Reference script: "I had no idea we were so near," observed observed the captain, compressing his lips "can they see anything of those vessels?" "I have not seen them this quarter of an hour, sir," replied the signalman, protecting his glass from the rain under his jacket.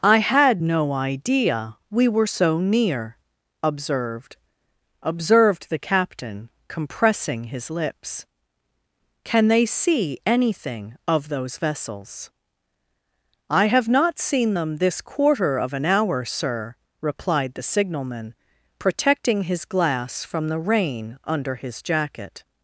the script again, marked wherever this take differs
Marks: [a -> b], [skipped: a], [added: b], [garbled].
"I had no idea we were so near," observed observed the captain, compressing his lips "can they see anything of those vessels?" "I have not seen them this quarter of an hour, sir," replied the signalman, protecting his glass from the rain under his jacket.